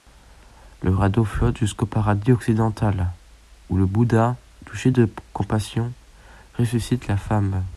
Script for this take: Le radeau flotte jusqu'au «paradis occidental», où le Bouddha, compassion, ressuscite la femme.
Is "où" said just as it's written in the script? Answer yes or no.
yes